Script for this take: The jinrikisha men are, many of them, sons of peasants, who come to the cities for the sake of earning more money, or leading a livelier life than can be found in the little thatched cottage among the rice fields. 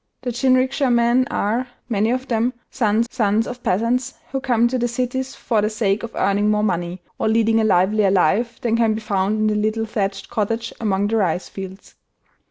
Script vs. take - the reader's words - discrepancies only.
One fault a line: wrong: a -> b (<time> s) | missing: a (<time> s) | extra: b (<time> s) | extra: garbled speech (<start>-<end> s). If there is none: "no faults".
extra: sons (3.1 s)